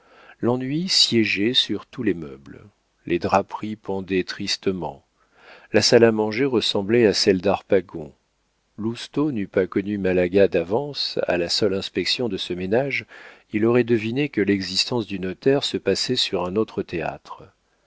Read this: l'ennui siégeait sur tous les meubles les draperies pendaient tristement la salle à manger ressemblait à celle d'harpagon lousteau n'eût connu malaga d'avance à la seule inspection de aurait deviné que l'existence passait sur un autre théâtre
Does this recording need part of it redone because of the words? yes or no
yes